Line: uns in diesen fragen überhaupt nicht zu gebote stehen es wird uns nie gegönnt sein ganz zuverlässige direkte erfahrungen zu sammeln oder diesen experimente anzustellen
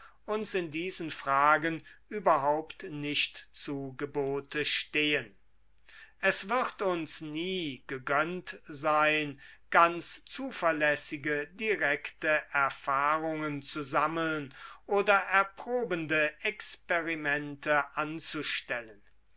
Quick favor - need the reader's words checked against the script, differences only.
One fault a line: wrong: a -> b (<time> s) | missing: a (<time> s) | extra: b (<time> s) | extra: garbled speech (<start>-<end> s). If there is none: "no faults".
wrong: diesen -> erprobende (15.2 s)